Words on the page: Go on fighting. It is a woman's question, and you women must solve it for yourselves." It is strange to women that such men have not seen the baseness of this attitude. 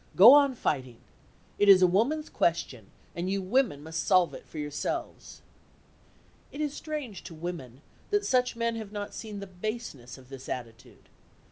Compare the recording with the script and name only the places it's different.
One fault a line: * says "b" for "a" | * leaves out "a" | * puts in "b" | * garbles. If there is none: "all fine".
all fine